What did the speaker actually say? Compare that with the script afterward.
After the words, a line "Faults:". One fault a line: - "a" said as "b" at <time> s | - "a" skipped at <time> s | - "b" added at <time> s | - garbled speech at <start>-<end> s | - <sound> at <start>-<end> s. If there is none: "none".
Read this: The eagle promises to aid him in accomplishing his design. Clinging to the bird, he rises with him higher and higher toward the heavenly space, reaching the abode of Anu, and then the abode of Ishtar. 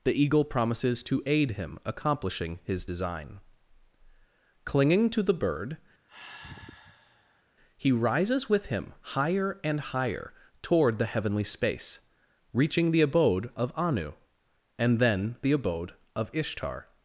The eagle promises to aid him accomplishing his design. Clinging to the bird, he rises with him higher and higher toward the heavenly space, reaching the abode of Anu, and then the abode of Ishtar.
Faults:
- "in" skipped at 1.8 s
- sigh at 6.1-7.4 s